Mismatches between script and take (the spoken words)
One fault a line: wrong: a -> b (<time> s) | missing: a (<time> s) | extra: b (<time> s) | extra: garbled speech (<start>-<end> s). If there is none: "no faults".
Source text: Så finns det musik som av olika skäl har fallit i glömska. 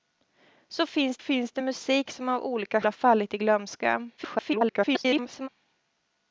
extra: finns (1.2 s)
missing: skäl (2.8 s)
extra: garbled speech (4.2-5.5 s)